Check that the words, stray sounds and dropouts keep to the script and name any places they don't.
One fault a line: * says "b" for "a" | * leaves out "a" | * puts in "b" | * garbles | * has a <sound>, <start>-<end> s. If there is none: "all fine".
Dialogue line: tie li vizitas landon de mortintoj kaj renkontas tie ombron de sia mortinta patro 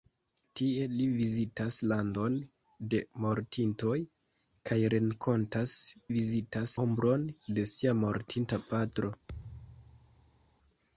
* says "vizitas" for "tie"
* has a thud, 9.3-10.6 s